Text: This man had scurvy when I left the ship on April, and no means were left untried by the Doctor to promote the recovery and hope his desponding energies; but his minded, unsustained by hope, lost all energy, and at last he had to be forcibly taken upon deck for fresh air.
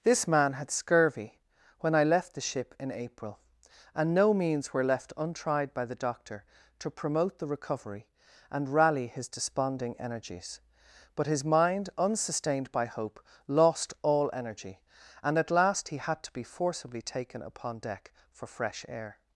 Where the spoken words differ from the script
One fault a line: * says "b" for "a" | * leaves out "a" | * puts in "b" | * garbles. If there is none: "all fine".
* says "in" for "on"
* says "rally" for "hope"
* says "mind" for "minded"